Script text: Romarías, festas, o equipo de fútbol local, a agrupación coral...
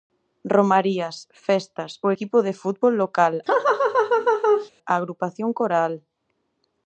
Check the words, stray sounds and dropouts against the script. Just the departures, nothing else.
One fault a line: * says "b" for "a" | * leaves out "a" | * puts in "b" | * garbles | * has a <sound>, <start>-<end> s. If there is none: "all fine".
* has a laugh, 3.5-4.7 s